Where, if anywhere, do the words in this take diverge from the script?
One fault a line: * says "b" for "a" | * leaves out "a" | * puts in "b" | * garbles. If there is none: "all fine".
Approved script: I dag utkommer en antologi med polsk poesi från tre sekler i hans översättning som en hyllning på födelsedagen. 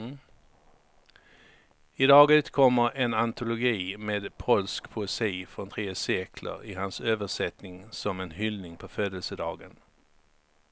all fine